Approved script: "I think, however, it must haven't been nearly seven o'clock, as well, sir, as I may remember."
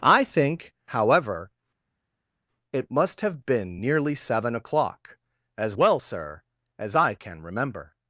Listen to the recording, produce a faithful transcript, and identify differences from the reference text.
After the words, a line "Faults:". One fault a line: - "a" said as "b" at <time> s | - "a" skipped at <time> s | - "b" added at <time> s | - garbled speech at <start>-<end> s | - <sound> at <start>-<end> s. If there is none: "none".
"I think, however, it must have been nearly seven o'clock, as well, sir, as I can remember."
Faults:
- "haven't" said as "have" at 3.2 s
- "may" said as "can" at 7.1 s